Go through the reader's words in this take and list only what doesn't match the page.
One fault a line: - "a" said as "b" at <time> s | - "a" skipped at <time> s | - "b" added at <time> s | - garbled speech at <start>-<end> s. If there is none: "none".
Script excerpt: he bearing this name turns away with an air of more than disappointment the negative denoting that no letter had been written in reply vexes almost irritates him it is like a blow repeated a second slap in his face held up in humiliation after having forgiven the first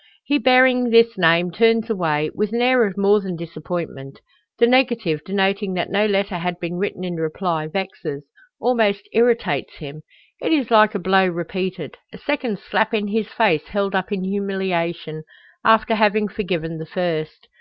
none